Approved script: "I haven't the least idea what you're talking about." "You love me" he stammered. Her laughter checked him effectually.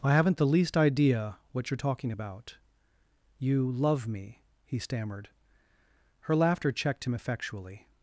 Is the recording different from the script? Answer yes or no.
no